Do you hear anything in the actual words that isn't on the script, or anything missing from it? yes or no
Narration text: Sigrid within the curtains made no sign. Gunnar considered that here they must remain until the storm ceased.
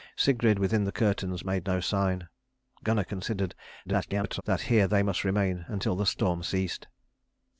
yes